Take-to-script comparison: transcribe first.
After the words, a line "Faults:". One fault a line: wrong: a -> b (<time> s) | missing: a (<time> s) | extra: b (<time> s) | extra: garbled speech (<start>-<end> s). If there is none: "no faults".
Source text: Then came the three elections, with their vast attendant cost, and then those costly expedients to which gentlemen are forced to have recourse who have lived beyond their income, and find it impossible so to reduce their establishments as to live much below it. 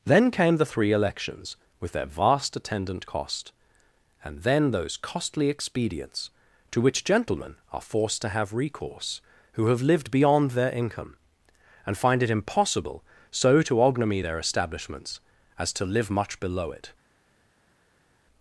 Then came the three elections, with their vast attendant cost, and then those costly expedients to which gentlemen are forced to have recourse who have lived beyond their income, and find it impossible so to ognomy their establishments as to live much below it.
Faults:
wrong: reduce -> ognomy (13.8 s)